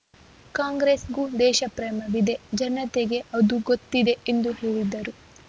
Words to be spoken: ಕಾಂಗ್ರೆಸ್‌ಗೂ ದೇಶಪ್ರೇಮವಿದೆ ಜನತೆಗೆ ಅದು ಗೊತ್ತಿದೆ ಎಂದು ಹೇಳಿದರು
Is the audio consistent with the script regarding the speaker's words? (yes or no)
yes